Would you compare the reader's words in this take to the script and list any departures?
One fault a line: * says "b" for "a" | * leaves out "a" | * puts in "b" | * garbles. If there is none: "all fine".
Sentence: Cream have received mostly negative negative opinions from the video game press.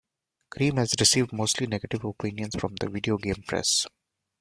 * says "has" for "have"
* leaves out "negative"